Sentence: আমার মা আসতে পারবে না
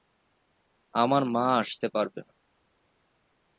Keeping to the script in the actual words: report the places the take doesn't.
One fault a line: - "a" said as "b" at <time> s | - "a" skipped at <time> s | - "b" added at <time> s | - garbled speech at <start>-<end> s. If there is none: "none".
none